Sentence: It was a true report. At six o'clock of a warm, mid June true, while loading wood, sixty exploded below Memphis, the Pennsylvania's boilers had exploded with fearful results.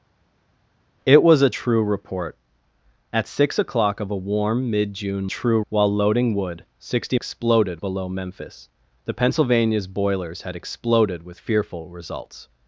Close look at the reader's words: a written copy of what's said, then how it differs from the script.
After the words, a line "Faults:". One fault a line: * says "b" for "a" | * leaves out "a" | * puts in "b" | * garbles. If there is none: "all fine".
It was a true report. At six o'clock of a warm, mid June true, while loading wood, sixty exploded below Memphis, the Pennsylvania's boilers had exploded with fearful results.
Faults:
all fine